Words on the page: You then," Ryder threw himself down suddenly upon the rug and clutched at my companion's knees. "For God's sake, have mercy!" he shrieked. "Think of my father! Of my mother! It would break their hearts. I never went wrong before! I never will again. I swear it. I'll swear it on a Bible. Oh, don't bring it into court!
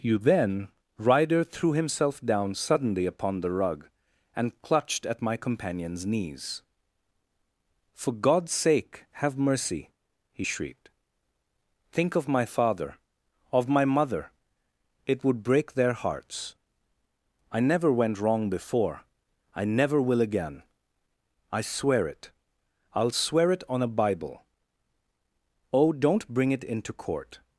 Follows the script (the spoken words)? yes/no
yes